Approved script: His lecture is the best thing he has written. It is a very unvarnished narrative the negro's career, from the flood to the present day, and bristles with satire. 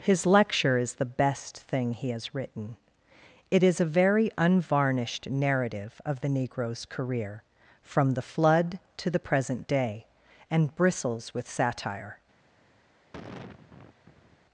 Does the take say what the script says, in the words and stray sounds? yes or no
no